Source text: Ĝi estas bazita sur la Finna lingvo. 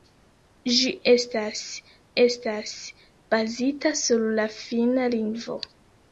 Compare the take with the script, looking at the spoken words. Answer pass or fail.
fail